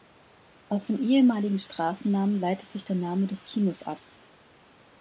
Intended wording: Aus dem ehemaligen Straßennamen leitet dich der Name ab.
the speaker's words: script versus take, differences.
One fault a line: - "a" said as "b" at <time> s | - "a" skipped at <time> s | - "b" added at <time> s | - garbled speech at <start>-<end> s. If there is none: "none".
- "dich" said as "sich" at 2.7 s
- "des Kinos" added at 3.3 s